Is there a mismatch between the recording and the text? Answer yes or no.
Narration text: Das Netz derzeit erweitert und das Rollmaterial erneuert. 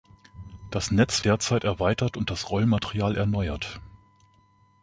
no